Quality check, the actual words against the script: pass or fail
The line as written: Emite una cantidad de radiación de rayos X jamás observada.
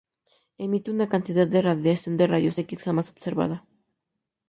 pass